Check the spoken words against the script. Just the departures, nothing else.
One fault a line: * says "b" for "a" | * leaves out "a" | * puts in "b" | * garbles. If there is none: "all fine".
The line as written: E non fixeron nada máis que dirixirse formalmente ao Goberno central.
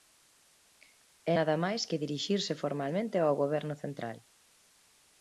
* leaves out "non fixeron"